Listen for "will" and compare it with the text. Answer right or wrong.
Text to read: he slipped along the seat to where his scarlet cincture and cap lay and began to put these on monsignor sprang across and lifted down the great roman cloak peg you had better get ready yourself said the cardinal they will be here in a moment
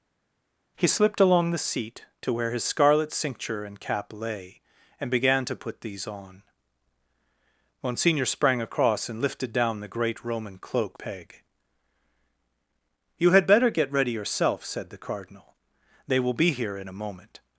right